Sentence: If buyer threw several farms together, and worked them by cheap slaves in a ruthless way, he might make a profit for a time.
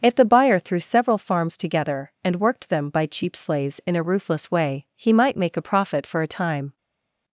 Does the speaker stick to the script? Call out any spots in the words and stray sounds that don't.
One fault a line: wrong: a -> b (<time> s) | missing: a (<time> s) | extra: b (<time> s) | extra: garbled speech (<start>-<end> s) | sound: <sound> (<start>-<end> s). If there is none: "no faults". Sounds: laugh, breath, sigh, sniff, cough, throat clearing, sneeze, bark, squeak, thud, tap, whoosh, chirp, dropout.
extra: the (0.1 s)